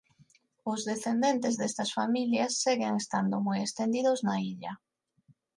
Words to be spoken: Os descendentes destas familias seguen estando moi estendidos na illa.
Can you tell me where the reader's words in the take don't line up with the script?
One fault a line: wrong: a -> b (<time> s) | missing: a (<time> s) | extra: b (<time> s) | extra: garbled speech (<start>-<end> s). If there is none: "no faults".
no faults